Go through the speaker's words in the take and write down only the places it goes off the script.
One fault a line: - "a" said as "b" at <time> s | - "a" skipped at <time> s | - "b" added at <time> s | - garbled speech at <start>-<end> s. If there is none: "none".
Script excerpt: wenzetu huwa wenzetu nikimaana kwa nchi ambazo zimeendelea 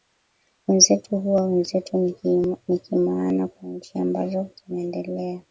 none